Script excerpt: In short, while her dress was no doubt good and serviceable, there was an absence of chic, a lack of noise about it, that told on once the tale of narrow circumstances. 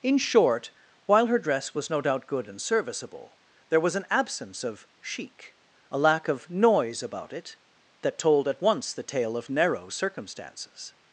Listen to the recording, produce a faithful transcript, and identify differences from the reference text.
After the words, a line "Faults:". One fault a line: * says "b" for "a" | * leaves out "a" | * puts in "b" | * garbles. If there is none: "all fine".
In short, while her dress was no doubt good and serviceable, there was an absence of chic, a lack of noise about it, that told at once the tale of narrow circumstances.
Faults:
* says "at" for "on"